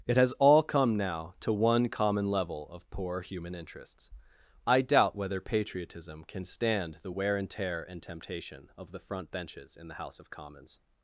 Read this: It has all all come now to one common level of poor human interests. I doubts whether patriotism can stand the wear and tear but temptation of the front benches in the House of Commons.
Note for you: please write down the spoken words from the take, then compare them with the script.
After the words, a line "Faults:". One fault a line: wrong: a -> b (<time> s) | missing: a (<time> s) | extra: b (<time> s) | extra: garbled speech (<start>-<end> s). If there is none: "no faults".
It has all come now to one common level of poor human interests. I doubt whether patriotism can stand the wear and tear and temptation of the front benches in the House of Commons.
Faults:
missing: all (0.6 s)
wrong: doubts -> doubt (4.8 s)
wrong: but -> and (7.8 s)